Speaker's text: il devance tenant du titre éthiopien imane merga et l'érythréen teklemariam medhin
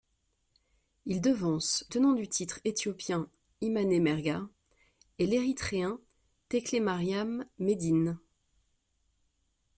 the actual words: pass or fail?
pass